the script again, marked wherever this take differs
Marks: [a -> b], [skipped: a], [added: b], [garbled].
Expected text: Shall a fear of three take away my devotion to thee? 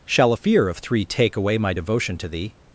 Shall a fear of three take away my devotion to thee?